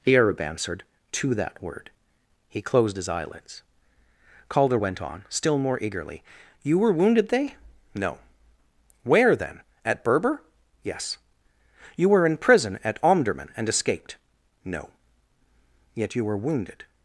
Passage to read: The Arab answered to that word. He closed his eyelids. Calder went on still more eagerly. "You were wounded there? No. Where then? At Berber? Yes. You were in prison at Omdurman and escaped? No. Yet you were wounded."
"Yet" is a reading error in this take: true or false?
false